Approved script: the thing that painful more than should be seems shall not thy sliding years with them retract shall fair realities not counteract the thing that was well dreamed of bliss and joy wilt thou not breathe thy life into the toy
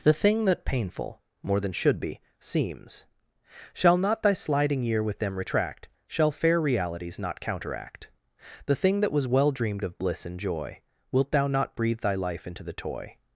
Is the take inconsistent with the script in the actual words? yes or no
yes